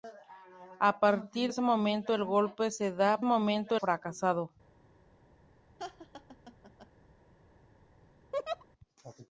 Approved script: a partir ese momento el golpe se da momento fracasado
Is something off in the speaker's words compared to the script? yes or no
no